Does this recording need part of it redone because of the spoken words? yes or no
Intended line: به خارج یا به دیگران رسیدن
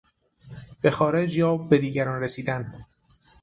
no